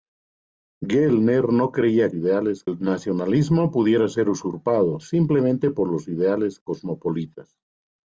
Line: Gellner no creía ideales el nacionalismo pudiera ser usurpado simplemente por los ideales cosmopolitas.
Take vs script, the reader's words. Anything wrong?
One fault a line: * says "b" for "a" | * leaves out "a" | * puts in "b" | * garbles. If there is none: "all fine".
all fine